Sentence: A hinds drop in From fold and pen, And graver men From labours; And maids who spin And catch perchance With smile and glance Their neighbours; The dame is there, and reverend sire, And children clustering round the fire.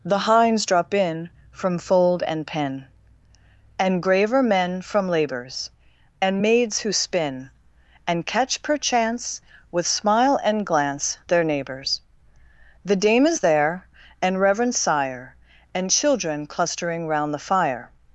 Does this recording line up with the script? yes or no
no